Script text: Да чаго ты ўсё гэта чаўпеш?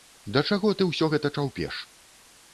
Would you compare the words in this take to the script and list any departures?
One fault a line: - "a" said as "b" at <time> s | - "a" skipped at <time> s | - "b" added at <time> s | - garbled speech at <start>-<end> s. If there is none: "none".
none